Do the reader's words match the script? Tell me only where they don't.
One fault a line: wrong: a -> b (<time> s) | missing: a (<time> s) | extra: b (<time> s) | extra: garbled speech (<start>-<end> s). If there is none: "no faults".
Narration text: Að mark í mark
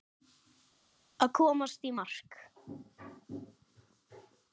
wrong: mark -> komast (1.4 s)